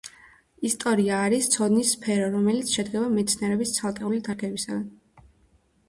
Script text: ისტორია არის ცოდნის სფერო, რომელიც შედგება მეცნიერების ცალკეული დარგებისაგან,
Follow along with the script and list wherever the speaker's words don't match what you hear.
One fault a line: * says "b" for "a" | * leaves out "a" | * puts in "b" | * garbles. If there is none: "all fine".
all fine